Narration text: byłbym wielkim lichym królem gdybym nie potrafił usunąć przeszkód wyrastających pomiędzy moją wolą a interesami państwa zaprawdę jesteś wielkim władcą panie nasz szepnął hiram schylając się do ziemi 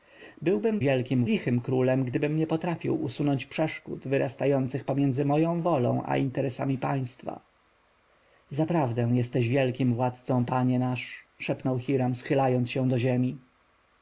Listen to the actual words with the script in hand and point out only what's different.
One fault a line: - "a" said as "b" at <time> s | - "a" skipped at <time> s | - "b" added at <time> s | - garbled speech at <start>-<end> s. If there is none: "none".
none